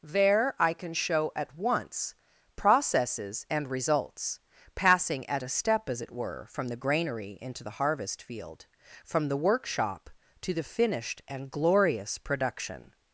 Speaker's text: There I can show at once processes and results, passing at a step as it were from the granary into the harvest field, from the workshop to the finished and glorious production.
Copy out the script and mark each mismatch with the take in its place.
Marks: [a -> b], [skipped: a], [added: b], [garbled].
There I can show at once processes and results, passing at a step as it were from the granary into the harvest field, from the workshop to the finished and glorious production.